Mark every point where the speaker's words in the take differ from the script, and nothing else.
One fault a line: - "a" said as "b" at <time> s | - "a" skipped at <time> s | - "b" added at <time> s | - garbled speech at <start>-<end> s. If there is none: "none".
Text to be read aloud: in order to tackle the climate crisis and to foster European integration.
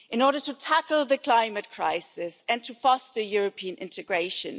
none